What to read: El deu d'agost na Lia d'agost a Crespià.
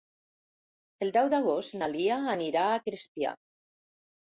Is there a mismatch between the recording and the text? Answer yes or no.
yes